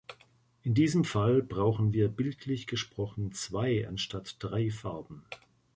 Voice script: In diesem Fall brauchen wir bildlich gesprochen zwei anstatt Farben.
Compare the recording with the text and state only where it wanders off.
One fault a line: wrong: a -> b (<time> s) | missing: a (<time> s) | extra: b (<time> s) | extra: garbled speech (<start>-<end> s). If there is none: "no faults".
extra: drei (4.4 s)